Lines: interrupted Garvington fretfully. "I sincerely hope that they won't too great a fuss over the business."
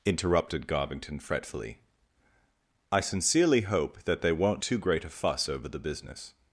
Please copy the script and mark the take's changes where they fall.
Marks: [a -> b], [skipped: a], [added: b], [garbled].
interrupted Garvington fretfully. "I sincerely hope that they won't too great a fuss over the business."